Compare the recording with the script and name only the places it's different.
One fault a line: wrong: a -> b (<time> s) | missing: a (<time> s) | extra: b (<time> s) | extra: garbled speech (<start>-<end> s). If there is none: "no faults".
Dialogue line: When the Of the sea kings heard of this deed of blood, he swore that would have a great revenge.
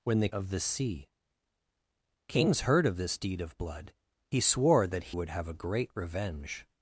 no faults